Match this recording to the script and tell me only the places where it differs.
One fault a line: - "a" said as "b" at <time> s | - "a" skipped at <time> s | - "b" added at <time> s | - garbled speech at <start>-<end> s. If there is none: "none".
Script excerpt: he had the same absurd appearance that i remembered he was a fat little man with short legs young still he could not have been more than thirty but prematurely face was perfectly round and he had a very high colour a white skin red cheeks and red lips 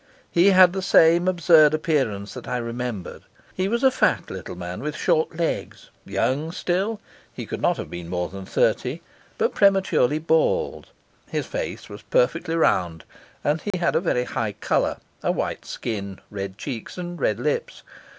- "bald his" added at 10.2 s